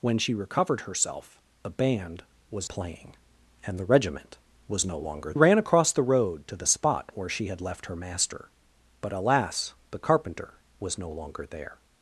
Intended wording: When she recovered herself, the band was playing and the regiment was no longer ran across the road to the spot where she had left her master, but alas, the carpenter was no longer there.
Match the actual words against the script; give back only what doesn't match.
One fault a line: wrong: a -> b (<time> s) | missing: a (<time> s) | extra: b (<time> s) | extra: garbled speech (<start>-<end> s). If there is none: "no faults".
no faults